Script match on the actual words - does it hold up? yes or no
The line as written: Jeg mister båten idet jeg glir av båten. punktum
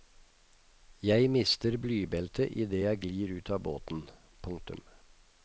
no